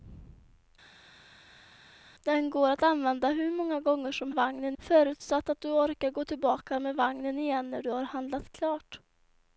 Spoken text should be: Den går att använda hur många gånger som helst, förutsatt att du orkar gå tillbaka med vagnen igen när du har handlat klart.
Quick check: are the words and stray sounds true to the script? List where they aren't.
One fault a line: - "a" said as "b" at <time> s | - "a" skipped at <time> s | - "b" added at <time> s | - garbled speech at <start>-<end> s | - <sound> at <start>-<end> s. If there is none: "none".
- "helst" said as "vagnen" at 4.3 s